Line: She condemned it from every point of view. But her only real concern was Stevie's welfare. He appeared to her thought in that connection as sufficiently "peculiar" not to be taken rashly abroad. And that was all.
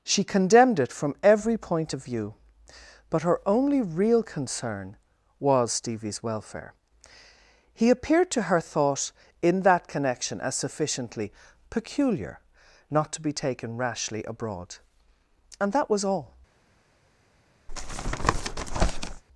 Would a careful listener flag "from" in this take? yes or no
no